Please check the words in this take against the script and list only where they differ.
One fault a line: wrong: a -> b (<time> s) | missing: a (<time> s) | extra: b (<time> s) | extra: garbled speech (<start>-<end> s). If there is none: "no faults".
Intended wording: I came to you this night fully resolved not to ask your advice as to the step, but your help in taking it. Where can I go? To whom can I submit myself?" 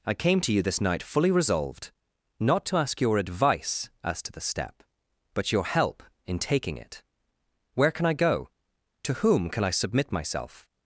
no faults